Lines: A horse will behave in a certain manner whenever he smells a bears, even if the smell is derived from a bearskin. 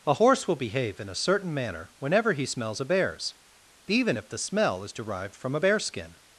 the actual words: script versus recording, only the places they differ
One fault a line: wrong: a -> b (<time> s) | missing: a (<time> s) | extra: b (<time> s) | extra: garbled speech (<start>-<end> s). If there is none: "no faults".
no faults